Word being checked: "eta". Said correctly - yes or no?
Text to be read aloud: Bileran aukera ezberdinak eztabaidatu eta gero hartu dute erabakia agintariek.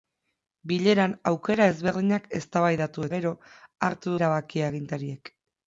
no